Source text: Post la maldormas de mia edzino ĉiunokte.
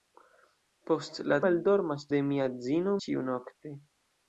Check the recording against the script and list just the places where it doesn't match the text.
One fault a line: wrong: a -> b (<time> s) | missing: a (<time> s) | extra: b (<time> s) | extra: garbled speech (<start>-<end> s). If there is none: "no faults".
no faults